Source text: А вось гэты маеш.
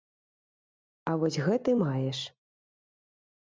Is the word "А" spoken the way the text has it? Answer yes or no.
yes